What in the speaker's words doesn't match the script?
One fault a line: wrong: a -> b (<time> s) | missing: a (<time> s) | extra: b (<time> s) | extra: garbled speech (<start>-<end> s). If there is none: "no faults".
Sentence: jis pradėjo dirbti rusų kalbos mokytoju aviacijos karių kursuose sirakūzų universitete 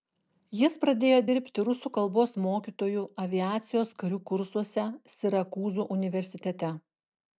no faults